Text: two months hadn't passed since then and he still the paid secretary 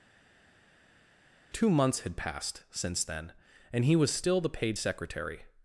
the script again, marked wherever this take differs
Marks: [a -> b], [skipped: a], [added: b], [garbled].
two months [hadn't -> had] passed since then and he [added: was] still the paid secretary